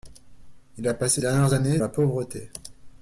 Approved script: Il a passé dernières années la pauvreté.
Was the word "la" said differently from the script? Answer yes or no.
no